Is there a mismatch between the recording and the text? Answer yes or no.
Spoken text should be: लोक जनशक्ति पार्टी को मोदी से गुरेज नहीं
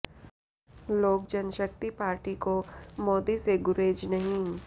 no